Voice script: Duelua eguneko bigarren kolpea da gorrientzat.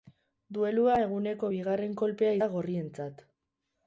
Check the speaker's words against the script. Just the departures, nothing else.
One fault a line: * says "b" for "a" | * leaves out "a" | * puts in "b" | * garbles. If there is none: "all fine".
all fine